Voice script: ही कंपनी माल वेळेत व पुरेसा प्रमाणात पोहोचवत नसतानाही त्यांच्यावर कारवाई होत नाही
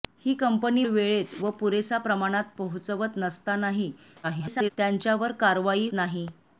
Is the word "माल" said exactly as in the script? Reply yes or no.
no